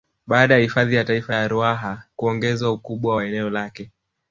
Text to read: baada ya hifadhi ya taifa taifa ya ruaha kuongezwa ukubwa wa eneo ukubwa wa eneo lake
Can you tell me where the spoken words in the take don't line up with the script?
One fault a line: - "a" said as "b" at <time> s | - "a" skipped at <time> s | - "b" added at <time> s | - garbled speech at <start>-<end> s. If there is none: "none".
- "taifa" skipped at 1.4 s
- "ukubwa wa eneo" skipped at 3.5 s